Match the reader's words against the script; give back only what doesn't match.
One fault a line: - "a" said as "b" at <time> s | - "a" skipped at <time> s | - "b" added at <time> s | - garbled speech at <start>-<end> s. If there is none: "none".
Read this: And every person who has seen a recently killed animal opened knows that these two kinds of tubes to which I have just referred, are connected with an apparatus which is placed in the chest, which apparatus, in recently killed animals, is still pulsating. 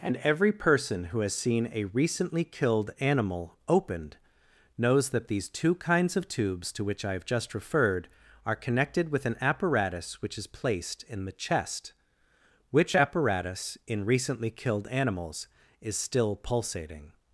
none